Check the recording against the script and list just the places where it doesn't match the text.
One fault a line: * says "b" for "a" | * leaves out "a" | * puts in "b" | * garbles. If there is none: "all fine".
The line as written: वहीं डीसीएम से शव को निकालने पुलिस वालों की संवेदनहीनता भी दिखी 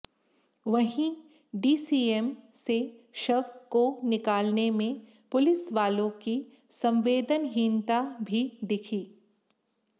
* puts in "में"